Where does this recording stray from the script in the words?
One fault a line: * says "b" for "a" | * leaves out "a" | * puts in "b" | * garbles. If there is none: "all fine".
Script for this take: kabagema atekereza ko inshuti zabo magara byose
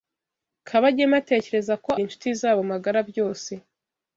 all fine